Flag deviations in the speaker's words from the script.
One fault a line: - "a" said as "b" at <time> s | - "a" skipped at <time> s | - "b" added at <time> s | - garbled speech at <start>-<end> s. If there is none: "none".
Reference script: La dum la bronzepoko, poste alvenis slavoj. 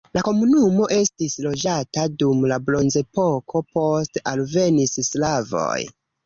- "komunumo estis loĝata" added at 0.3 s